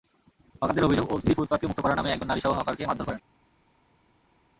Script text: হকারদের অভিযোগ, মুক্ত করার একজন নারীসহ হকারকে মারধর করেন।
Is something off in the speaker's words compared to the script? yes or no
yes